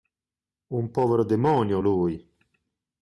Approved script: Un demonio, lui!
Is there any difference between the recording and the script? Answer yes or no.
yes